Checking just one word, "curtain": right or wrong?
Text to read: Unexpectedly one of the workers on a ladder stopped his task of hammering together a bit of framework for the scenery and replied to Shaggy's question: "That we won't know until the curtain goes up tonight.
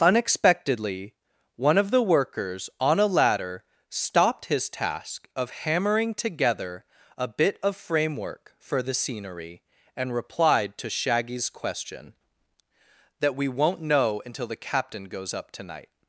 wrong